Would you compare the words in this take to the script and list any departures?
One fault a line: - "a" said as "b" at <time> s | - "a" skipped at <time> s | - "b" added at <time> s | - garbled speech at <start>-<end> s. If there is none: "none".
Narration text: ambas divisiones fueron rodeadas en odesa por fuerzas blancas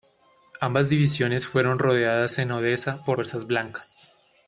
none